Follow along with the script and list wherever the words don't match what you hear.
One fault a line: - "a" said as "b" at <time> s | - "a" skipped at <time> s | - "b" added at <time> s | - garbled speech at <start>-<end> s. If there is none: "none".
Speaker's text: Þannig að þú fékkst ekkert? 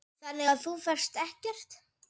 none